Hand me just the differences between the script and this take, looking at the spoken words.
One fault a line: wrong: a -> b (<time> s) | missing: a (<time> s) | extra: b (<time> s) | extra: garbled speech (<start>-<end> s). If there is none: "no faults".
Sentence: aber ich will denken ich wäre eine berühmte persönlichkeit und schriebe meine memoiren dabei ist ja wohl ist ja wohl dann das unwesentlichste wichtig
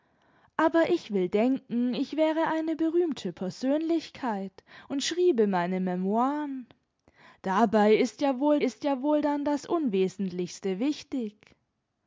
no faults